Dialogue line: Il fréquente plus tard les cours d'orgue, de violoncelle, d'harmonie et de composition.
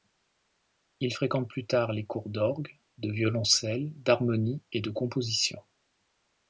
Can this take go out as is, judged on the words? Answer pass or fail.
pass